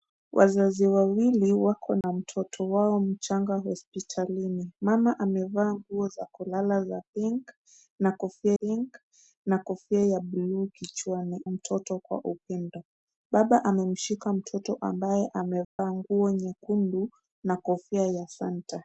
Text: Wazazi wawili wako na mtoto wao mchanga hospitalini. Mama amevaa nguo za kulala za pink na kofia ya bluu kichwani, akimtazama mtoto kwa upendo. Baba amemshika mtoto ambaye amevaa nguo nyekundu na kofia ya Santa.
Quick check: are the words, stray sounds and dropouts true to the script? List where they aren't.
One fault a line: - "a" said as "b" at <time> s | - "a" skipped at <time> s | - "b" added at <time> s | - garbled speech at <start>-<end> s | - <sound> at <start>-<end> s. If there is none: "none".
- dropout at 2.0-2.0 s
- "pink na kofia" added at 8.6 s
- "akimtazama" skipped at 11.4 s
- dropout at 15.6-15.8 s